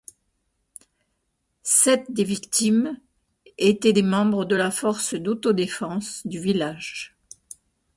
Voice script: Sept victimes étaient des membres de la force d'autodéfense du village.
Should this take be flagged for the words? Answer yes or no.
yes